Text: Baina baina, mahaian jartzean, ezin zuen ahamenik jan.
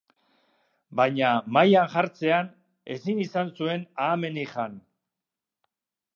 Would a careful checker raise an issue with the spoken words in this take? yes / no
yes